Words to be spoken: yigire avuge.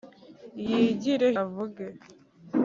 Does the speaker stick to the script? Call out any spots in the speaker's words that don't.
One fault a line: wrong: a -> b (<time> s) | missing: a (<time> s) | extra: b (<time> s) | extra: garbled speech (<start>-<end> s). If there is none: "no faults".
no faults